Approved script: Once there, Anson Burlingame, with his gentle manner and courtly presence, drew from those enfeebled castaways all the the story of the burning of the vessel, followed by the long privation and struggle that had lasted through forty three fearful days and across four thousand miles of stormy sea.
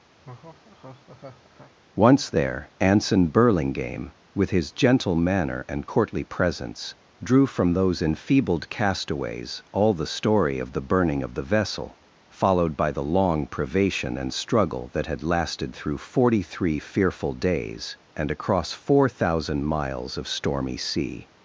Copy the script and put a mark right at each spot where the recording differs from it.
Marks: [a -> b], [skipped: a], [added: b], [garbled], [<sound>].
[laugh] Once there, Anson Burlingame, with his gentle manner and courtly presence, drew from those enfeebled castaways all the [skipped: the] story of the burning of the vessel, followed by the long privation and struggle that had lasted through forty three fearful days and across four thousand miles of stormy sea.